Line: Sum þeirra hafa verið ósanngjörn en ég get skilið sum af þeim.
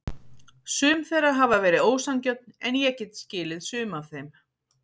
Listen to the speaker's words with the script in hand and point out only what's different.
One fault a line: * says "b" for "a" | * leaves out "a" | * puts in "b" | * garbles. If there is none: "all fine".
all fine